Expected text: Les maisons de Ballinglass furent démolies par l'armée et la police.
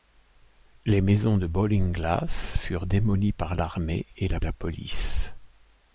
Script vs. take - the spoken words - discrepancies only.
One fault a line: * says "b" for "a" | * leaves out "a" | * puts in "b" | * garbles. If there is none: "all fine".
* puts in "la"